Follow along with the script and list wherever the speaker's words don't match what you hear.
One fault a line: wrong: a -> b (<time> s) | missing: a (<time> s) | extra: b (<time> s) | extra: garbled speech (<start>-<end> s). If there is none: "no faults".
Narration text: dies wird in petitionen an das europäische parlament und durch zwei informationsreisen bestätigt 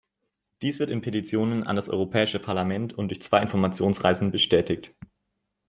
no faults